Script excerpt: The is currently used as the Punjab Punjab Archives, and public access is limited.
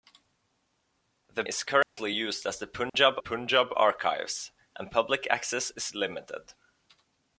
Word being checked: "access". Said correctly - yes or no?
yes